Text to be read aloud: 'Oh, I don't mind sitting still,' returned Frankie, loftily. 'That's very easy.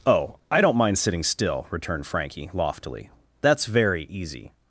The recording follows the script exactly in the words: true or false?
true